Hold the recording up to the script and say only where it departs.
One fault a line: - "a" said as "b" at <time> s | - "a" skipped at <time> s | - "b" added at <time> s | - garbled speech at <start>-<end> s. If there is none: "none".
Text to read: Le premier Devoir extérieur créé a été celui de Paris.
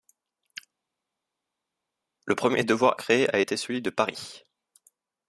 - "extérieur" skipped at 2.9 s